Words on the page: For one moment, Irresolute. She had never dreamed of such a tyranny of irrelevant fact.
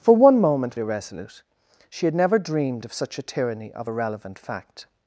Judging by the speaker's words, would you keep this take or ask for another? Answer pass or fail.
pass